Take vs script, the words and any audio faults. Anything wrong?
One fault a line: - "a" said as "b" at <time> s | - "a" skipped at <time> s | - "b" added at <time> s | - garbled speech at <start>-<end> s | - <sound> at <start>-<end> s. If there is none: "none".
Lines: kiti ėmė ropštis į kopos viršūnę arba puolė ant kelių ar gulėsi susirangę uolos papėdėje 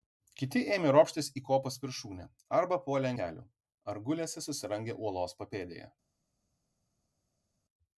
- "ant" skipped at 3.1 s